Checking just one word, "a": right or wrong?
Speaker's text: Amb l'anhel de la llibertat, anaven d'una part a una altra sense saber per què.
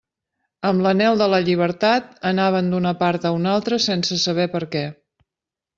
right